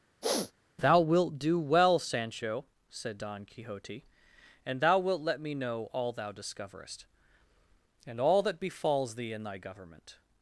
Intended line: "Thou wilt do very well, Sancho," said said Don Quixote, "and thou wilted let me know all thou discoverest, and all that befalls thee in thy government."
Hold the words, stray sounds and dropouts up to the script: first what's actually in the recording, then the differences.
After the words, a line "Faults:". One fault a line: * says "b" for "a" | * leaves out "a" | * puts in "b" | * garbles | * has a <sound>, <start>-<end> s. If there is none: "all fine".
"Thou wilt do well, Sancho," said Don Quixote, "and thou wilt let me know all thou discoverest, and all that befalls thee in thy government."
Faults:
* has a sniff, 0.2-0.5 s
* leaves out "very"
* leaves out "said"
* says "wilt" for "wilted"